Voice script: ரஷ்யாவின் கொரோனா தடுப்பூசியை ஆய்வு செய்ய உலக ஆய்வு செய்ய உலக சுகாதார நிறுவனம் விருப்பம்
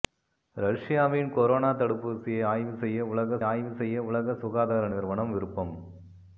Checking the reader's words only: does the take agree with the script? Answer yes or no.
yes